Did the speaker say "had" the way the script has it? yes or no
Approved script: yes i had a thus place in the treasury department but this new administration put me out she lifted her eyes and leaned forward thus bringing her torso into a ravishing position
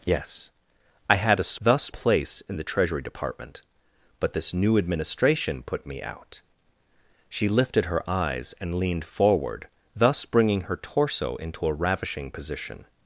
yes